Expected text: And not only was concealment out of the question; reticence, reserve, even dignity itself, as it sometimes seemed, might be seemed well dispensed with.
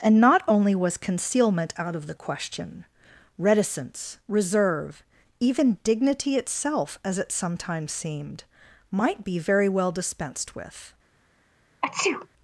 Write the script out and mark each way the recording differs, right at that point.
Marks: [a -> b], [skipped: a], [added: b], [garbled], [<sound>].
And not only was concealment out of the question; reticence, reserve, even dignity itself, as it sometimes seemed, might be [seemed -> very] well dispensed with. [sneeze]